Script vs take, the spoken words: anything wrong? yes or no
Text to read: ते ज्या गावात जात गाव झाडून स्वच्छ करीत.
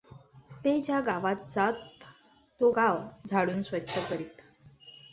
yes